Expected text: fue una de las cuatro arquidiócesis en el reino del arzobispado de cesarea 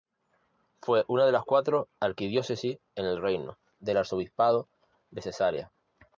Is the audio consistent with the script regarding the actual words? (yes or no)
yes